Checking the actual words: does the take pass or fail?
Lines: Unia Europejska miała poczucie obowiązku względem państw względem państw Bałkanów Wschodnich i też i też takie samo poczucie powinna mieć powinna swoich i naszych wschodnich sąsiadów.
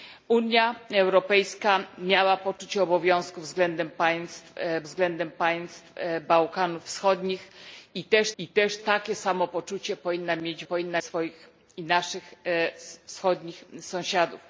pass